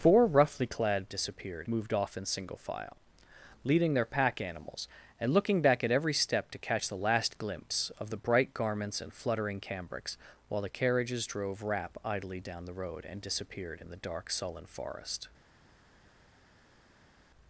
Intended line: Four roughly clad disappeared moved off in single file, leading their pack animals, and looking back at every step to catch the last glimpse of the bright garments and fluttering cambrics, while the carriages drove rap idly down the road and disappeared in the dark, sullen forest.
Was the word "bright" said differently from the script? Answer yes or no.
no